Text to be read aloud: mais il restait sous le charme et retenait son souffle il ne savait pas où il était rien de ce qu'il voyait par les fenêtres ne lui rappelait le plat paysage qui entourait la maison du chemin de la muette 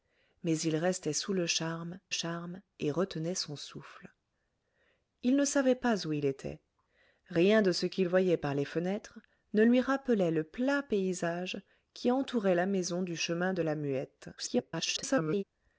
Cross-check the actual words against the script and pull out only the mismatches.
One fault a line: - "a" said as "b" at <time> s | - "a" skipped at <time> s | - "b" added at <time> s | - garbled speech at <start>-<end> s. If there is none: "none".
- "charme" added at 2.1 s
- garbled speech at 14.4-15.4 s